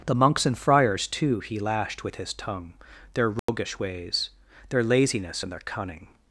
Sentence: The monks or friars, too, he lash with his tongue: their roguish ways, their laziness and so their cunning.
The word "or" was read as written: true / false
false